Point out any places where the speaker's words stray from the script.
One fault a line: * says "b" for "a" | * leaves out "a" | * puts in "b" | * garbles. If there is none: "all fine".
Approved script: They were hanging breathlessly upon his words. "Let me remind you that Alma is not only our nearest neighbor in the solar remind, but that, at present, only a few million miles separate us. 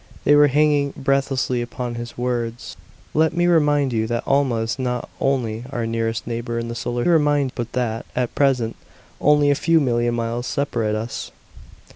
all fine